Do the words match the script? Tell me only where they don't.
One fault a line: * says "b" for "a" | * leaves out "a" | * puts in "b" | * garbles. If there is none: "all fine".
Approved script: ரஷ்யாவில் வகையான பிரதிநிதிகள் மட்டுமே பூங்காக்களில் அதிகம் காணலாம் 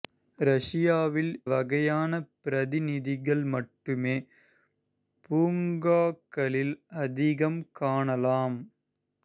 all fine